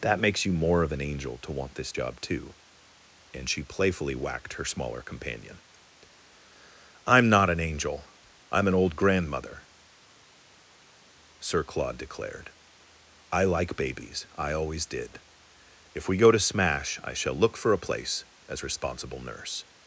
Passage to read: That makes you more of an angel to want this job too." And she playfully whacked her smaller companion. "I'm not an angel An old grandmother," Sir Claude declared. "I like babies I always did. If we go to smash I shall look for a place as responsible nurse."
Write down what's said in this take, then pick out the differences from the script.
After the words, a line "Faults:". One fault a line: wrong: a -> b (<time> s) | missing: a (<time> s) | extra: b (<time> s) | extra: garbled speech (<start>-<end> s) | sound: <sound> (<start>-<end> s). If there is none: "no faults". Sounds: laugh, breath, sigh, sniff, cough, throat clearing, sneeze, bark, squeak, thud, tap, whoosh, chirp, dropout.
That makes you more of an angel to want this job too." And she playfully whacked her smaller companion. "I'm not an angel I'm an old grandmother," Sir Claude declared. "I like babies I always did. If we go to smash I shall look for a place as responsible nurse."
Faults:
extra: I'm (8.5 s)